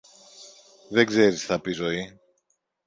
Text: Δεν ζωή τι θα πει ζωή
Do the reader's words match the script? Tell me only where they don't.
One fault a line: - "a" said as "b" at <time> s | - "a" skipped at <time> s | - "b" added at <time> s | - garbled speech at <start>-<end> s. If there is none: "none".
- "ζωή" said as "ξέρεις" at 1.1 s